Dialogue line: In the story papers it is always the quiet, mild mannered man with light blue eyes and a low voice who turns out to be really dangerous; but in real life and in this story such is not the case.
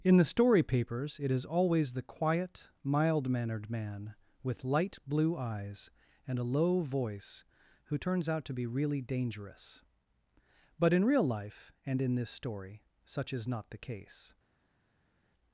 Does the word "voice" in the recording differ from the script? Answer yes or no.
no